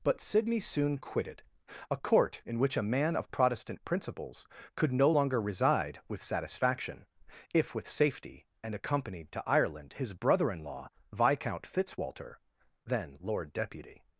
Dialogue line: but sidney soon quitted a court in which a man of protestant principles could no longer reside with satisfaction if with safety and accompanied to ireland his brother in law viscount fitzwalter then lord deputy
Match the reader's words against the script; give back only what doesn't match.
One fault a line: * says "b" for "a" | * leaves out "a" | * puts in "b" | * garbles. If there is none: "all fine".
all fine